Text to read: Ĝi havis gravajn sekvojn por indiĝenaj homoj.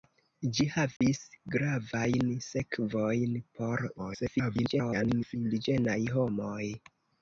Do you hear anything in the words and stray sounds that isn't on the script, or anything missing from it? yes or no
yes